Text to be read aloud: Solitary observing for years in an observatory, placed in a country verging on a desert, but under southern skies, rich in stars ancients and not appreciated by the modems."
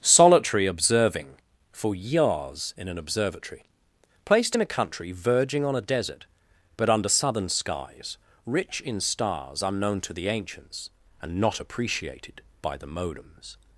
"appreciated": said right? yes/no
yes